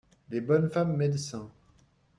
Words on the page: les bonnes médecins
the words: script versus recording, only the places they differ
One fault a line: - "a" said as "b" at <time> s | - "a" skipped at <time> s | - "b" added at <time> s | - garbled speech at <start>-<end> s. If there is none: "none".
- "femmes" added at 0.7 s